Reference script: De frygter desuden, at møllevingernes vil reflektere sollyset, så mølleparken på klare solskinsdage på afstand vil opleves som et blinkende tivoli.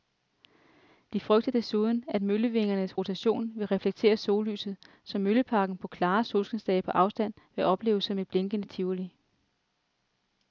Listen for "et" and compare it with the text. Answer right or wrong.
right